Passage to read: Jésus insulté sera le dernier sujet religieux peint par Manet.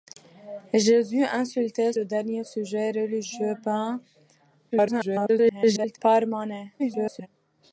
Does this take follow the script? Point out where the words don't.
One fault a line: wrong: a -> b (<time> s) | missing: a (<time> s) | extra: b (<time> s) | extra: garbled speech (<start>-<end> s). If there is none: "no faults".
missing: sera (1.9 s)
extra: garbled speech (4.7-6.0 s)
extra: garbled speech (6.8-7.3 s)